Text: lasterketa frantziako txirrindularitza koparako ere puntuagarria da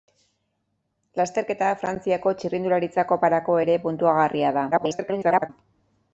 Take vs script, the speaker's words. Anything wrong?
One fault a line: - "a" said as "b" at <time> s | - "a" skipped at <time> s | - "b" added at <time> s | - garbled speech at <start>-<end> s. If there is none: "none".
- garbled speech at 4.7-5.5 s